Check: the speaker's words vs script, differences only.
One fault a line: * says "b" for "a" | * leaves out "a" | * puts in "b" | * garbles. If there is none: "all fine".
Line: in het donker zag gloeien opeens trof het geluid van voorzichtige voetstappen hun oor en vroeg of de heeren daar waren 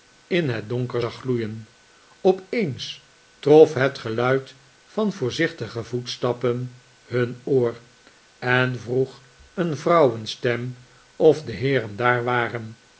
* puts in "een vrouwenstem"